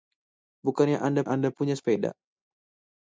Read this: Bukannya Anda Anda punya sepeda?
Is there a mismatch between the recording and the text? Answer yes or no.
no